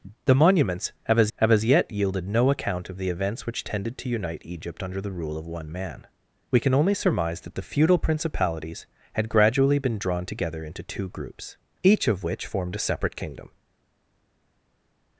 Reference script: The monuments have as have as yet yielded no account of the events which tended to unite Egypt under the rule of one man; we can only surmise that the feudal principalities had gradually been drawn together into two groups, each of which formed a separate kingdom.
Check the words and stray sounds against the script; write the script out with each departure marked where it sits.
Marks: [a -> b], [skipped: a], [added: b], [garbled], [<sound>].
The monuments have as have as yet yielded no account of the events which tended to unite Egypt under the rule of one man; we can only surmise that the feudal principalities had gradually been drawn together into two groups, each of which formed a separate kingdom.